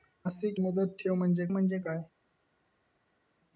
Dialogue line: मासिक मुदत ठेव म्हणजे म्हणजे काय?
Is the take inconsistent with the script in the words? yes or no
no